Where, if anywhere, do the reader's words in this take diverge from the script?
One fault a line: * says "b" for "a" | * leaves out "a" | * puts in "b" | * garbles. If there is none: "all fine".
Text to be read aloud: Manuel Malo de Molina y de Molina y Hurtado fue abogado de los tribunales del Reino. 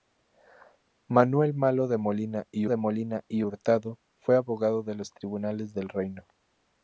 all fine